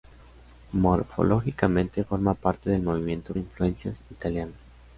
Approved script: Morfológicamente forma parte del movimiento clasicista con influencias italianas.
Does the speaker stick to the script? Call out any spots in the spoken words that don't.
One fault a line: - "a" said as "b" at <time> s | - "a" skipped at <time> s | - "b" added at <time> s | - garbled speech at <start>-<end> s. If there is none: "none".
- "clasicista con" skipped at 3.3 s